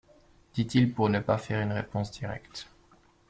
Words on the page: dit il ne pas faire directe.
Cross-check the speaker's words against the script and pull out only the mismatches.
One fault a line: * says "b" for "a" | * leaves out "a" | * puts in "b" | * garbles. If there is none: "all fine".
* puts in "pour"
* puts in "une réponse"